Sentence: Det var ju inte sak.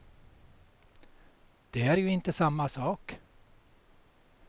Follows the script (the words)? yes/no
no